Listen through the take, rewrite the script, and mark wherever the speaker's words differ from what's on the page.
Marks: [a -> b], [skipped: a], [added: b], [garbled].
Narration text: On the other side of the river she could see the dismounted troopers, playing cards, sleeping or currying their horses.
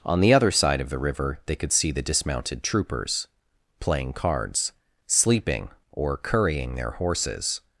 On the other side of the river [she -> they] could see the dismounted troopers, playing cards, sleeping or currying their horses.